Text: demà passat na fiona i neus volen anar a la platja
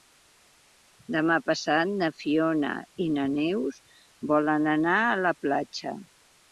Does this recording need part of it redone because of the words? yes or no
yes